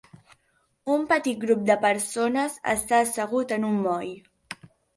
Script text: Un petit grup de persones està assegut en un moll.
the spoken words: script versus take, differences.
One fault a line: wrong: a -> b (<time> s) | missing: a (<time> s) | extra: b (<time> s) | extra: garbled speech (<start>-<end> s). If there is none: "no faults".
no faults